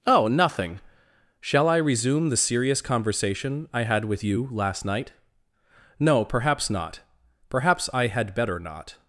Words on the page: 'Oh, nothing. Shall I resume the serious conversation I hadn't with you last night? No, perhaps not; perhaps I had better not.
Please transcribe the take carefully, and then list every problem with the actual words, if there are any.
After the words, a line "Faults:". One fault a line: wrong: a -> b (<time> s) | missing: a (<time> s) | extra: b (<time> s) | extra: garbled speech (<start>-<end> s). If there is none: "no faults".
'Oh, nothing. Shall I resume the serious conversation I had with you last night? No, perhaps not; perhaps I had better not.
Faults:
wrong: hadn't -> had (3.8 s)